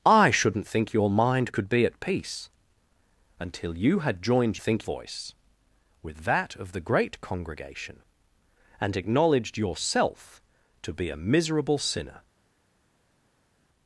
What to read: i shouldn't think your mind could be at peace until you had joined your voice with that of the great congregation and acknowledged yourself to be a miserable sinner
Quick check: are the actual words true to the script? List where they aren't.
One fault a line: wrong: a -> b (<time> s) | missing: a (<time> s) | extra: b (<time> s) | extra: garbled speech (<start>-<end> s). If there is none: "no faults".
wrong: your -> think (4.6 s)